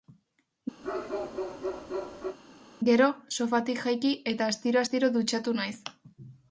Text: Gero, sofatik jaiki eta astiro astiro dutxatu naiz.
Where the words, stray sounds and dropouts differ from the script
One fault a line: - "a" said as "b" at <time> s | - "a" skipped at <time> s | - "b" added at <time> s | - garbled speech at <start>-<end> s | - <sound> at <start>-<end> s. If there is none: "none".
- bark at 0.8-2.4 s